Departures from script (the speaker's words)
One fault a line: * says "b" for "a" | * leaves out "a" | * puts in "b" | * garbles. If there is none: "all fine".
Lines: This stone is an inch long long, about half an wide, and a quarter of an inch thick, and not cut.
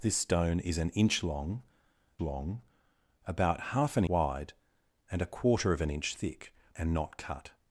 all fine